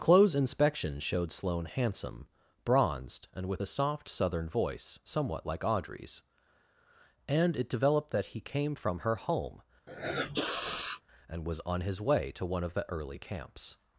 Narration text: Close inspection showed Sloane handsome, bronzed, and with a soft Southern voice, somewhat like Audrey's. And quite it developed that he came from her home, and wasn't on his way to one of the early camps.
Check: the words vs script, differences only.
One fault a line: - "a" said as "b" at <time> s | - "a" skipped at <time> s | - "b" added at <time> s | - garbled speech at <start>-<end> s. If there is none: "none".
- "quite" skipped at 7.6 s
- "wasn't" said as "was" at 11.5 s